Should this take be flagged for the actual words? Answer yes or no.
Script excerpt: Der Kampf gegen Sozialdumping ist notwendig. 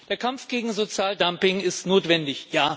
no